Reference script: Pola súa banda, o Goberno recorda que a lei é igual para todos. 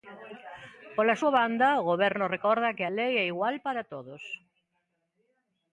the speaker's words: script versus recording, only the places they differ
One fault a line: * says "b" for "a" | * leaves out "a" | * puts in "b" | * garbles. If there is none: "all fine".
all fine